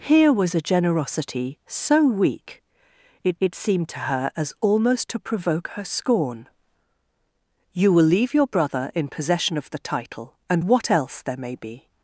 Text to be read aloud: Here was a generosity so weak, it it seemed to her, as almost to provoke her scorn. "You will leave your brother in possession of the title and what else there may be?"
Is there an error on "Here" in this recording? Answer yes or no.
no